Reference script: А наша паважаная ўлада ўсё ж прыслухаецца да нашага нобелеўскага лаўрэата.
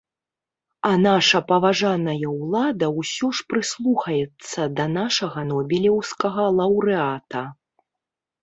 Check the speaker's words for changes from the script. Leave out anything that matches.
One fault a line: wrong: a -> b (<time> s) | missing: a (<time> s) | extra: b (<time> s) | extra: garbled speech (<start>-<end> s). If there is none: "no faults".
no faults